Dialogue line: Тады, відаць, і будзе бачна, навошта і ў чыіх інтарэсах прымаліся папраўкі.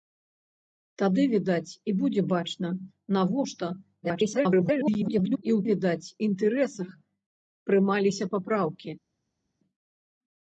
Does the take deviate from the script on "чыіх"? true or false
true